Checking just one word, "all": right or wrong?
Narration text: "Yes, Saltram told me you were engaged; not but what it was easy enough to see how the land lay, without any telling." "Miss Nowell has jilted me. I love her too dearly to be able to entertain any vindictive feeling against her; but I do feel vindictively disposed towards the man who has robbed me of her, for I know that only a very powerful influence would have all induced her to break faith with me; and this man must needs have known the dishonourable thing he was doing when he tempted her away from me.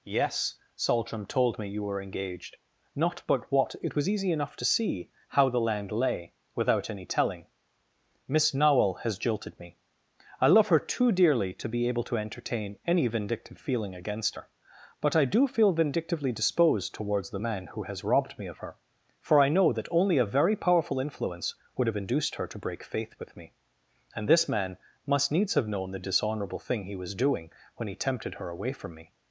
wrong